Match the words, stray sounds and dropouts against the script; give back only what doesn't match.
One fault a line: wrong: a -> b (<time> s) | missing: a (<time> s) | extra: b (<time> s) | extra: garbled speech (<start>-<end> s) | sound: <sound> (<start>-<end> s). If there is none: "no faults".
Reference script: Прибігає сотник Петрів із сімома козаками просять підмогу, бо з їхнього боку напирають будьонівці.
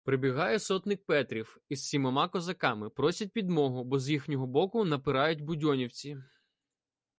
no faults